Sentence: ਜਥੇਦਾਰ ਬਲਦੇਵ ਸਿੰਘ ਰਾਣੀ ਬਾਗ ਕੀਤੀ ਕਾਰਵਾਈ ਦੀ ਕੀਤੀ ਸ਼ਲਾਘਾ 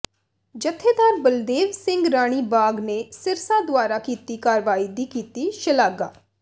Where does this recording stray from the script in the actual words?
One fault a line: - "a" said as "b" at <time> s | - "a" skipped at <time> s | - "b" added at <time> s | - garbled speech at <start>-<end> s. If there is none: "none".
- "ਨੇ ਸਿਰਸਾ ਦੁਆਰਾ" added at 2.8 s